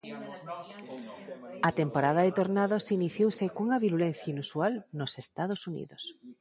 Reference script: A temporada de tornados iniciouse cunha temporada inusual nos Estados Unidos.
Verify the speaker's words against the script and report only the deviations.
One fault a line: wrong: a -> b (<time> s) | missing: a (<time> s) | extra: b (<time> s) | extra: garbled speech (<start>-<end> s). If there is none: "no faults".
wrong: temporada -> virulencia (3.8 s)